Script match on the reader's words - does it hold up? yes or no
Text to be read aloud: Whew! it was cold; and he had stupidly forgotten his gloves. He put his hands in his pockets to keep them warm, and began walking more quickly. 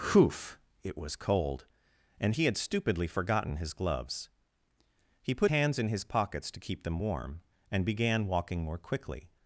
no